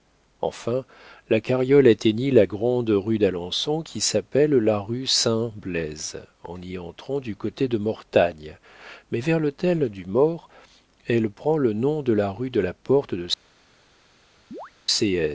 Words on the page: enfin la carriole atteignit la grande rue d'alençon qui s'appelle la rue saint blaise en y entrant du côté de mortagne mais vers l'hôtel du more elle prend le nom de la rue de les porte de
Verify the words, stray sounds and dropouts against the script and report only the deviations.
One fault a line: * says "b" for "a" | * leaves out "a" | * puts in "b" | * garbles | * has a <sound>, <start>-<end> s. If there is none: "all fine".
* says "la" for "les"
* has a chirp, 14.5-14.7 s